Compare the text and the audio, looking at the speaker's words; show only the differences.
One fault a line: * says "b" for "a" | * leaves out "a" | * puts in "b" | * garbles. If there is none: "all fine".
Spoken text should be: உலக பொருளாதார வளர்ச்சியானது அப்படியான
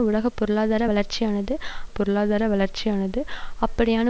* puts in "பொருளாதார வளர்ச்சியானது"